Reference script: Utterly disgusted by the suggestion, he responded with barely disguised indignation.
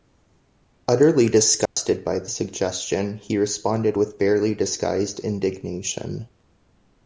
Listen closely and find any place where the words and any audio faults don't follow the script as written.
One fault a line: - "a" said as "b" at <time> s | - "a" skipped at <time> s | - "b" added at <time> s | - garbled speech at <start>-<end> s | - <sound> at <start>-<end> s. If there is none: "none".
- dropout at 1.7-1.8 s